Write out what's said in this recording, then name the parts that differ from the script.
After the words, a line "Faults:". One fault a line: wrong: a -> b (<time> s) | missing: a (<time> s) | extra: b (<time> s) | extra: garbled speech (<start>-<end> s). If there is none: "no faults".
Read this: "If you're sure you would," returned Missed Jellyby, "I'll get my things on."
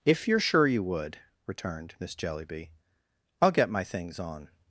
"If you're sure you would," returned Miss Jellyby, "I'll get my things on."
Faults:
wrong: Missed -> Miss (2.0 s)